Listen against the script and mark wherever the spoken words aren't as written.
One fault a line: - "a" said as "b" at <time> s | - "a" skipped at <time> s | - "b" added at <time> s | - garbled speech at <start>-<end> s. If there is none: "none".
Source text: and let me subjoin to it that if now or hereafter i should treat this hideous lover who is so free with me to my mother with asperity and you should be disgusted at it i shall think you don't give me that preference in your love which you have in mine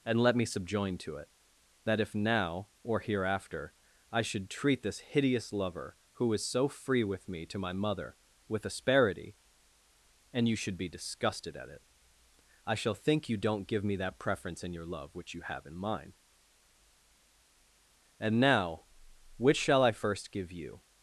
- "and now which shall i first give you" added at 18.2 s